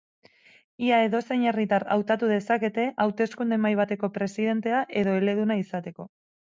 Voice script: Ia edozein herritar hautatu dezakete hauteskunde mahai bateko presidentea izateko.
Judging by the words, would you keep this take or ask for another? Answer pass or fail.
fail